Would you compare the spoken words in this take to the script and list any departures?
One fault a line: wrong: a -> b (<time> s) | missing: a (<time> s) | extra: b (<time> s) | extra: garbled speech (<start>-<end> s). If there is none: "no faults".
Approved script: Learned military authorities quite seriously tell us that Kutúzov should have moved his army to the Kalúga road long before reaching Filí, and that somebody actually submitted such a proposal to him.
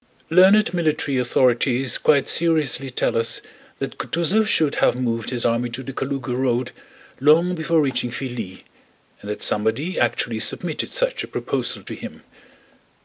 no faults